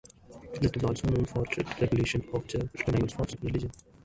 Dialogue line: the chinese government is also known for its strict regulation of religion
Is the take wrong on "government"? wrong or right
wrong